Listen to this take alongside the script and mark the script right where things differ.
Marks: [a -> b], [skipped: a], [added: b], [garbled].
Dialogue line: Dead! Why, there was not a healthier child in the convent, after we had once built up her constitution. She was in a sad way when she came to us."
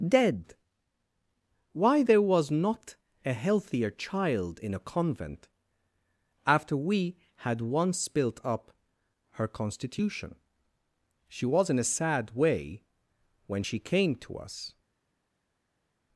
Dead! Why, there was not a healthier child in [the -> a] convent, after we had once built up her constitution. She was in a sad way when she came to us."